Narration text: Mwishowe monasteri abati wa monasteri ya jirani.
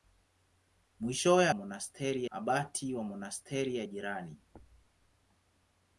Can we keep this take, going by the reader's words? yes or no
yes